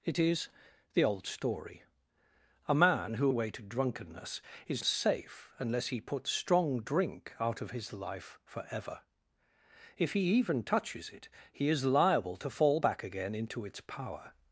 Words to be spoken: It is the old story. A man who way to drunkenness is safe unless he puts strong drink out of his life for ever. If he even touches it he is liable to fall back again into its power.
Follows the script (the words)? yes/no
yes